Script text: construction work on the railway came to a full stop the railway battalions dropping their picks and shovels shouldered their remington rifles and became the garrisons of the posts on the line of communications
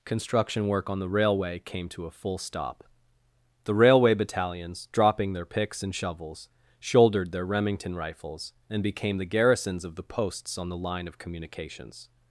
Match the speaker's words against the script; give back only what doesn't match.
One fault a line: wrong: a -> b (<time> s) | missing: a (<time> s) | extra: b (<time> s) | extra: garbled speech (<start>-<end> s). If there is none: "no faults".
no faults